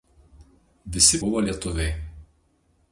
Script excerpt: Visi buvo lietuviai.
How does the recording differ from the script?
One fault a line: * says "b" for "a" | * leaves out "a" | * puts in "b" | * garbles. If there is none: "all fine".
all fine